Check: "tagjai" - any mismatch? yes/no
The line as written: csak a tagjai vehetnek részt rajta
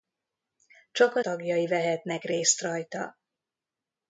no